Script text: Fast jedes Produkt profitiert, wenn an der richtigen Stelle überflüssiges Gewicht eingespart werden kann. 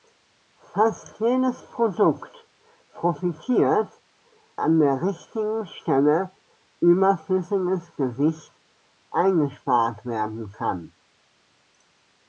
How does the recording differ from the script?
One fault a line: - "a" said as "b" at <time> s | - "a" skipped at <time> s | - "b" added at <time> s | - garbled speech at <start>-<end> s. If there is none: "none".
- "wenn" skipped at 3.9 s